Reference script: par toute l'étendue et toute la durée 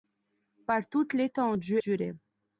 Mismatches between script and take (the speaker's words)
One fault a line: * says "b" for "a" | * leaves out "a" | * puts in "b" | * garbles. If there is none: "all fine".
* leaves out "et toute la"